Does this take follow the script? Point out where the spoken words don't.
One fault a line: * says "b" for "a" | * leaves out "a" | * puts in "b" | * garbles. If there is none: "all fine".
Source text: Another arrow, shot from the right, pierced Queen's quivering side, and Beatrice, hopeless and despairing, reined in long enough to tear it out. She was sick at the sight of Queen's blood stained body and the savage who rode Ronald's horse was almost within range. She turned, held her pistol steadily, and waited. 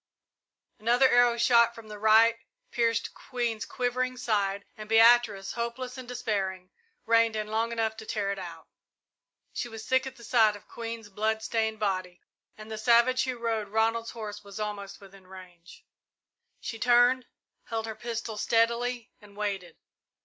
all fine